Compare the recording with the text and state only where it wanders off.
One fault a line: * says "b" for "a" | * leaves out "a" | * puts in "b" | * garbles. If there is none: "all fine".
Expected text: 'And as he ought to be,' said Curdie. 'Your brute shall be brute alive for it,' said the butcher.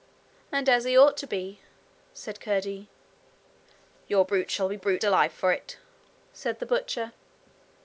all fine